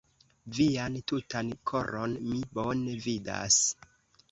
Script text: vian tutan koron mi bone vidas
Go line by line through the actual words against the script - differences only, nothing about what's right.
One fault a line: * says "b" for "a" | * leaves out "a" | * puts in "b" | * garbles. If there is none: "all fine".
all fine